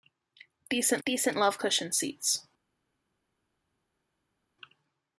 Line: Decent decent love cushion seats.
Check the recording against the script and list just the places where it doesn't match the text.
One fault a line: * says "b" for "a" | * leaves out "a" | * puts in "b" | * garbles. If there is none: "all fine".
all fine